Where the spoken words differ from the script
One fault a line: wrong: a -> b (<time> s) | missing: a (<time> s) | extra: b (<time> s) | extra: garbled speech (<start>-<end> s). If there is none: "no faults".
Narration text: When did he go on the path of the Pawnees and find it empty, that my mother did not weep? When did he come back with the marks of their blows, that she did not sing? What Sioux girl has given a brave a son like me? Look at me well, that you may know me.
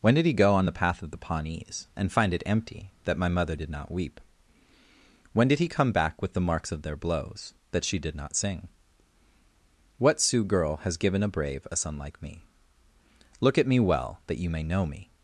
no faults